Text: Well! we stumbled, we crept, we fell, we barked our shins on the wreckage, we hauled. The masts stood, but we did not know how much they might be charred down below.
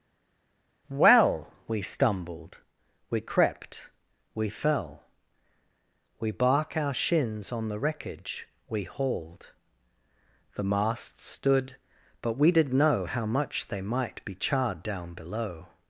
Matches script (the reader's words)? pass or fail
fail